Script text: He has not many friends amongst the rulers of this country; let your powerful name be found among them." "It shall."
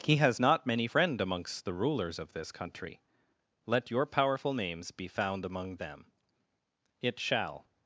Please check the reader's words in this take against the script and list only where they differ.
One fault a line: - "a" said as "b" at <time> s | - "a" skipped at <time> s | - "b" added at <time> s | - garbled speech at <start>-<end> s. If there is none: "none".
- "friends" said as "friend" at 0.8 s
- "name" said as "names" at 4.5 s